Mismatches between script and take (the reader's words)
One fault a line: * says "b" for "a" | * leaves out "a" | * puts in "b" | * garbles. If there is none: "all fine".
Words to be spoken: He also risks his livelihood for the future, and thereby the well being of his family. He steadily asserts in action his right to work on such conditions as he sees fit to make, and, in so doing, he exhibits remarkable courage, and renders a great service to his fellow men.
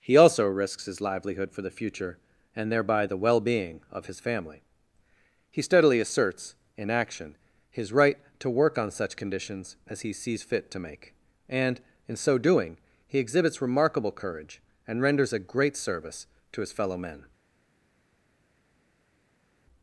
all fine